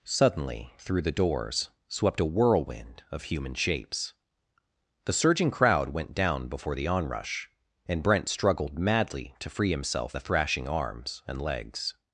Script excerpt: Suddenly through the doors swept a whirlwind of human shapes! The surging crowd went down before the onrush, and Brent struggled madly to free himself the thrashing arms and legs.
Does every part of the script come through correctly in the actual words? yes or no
yes